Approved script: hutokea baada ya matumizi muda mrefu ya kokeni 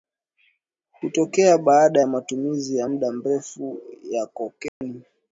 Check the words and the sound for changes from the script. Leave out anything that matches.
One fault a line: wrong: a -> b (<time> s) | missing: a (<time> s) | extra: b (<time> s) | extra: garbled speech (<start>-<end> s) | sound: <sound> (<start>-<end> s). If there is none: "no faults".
extra: ya (2.8 s)
sound: dropout (4.7-4.8 s)